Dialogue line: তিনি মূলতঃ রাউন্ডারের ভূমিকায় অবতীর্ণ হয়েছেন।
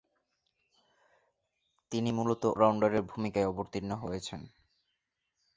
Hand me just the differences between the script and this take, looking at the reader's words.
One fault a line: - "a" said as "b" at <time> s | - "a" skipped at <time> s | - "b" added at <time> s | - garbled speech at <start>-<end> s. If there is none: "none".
none